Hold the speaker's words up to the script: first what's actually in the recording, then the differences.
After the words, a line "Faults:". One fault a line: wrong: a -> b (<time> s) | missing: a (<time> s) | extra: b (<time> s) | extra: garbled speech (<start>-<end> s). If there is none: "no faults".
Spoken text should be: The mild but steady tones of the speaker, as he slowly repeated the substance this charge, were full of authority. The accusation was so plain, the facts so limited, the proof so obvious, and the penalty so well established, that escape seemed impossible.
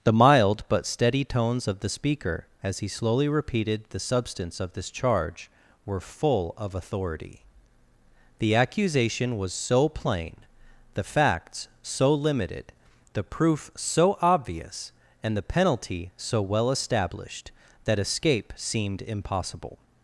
The mild but steady tones of the speaker, as he slowly repeated the substance of this charge, were full of authority. The accusation was so plain, the facts so limited, the proof so obvious, and the penalty so well established, that escape seemed impossible.
Faults:
extra: of (4.6 s)